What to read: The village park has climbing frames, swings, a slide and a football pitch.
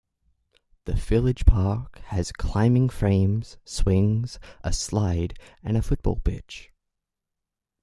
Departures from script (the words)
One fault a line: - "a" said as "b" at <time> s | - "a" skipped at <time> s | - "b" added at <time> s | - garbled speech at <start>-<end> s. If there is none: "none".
none